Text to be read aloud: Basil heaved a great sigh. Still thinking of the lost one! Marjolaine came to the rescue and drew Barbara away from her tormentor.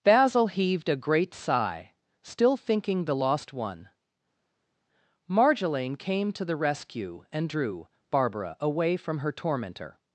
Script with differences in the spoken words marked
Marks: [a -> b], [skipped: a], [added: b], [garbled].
Basil heaved a great sigh. Still thinking [skipped: of] the lost one! Marjolaine came to the rescue and drew Barbara away from her tormentor.